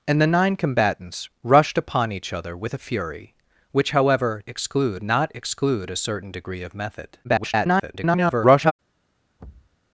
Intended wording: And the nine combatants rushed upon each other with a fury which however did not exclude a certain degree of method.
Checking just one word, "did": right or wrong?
wrong